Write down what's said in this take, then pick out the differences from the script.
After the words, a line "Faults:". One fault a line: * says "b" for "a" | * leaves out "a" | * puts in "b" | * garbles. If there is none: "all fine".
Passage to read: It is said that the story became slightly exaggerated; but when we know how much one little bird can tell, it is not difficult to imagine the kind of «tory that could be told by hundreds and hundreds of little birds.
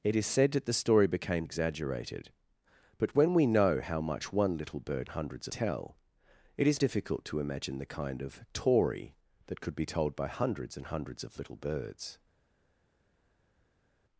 It is said that the story became exaggerated; but when we know how much one little bird hundreds tell, it is difficult to imagine the kind of «tory that could be told by hundreds and hundreds of little birds.
Faults:
* leaves out "slightly"
* says "hundreds" for "can"
* leaves out "not"